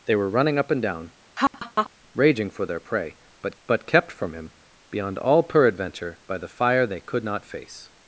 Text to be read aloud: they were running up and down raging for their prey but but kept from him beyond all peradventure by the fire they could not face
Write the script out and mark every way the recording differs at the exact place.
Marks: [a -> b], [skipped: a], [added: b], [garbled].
they were running up and down raging for their prey but but kept from him beyond all peradventure by the fire they could not face